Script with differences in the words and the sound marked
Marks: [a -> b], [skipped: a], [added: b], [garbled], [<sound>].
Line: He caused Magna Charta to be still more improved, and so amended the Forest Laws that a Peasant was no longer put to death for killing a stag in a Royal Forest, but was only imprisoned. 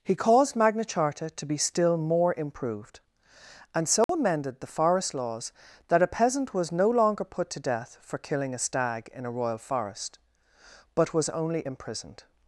He caused Magna Charta to be still more improved, and so [dropout] amended the Forest Laws that a Peasant was no longer put to death for killing a stag in a Royal Forest, but was only imprisoned.